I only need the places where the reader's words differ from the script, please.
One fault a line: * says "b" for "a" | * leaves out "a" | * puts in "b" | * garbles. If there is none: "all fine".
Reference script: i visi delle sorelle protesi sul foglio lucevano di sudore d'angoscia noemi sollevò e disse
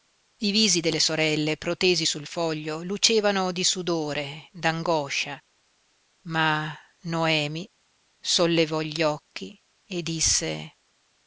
* puts in "ma"
* puts in "gli occhi"